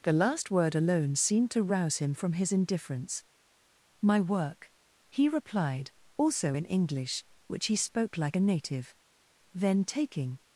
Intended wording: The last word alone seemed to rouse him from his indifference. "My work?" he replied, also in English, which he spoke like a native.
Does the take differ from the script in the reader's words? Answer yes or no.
yes